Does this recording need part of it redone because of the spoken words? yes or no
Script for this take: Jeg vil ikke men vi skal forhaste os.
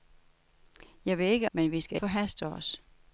no